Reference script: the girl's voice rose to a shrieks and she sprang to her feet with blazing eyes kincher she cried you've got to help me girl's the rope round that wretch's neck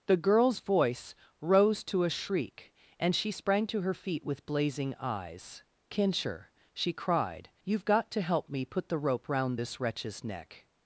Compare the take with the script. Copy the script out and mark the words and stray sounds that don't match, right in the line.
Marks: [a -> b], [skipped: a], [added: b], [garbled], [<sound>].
the girl's voice rose to a [shrieks -> shriek] and she sprang to her feet with blazing eyes kincher she cried you've got to help me [girl's -> put] the rope round [that -> this] wretch's neck